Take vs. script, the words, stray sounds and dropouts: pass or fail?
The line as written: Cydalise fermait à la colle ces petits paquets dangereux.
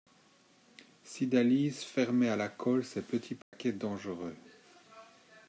fail